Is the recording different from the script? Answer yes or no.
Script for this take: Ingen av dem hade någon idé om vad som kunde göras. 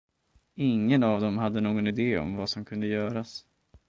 no